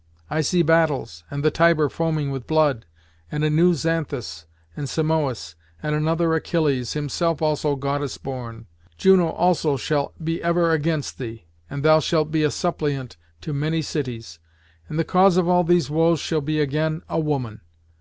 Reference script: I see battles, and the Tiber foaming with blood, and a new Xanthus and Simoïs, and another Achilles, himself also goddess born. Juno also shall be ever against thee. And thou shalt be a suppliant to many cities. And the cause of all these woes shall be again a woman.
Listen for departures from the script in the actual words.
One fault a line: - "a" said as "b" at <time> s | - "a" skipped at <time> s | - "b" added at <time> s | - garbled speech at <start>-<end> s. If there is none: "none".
none